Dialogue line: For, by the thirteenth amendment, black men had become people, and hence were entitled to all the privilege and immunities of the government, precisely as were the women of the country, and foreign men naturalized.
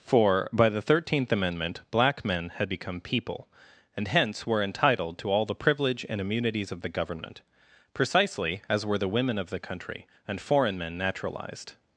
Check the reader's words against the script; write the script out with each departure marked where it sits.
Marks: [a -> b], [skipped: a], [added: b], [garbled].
For, by the thirteenth amendment, black men had become people, and hence were entitled to all the privilege and immunities of the government, precisely as were the women of the country, and foreign men naturalized.